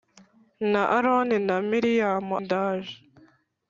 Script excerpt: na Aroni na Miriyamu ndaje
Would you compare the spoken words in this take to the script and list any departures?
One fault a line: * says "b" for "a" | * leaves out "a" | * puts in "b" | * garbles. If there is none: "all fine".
all fine